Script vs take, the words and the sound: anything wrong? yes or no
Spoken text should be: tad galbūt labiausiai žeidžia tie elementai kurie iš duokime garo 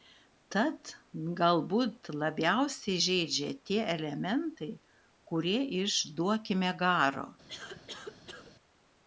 yes